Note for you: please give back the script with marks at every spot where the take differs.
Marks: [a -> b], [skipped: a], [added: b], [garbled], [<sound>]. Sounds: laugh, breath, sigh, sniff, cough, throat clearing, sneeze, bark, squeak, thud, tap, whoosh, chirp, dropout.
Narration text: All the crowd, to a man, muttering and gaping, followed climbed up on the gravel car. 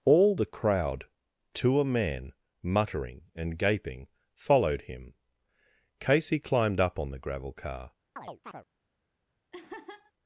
All the crowd, to a man, muttering and gaping, followed [added: him Casey] climbed up on the gravel car. [chirp] [laugh]